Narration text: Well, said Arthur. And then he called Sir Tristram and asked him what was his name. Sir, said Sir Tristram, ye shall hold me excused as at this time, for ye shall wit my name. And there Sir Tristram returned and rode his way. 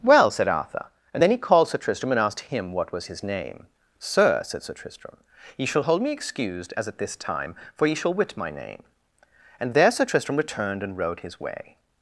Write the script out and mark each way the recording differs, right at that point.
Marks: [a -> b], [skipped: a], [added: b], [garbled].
Well, said Arthur. And then he called Sir Tristram and asked him what was his name. Sir, said Sir Tristram, ye shall hold me excused as at this time, for ye shall wit my name. And there Sir Tristram returned and rode his way.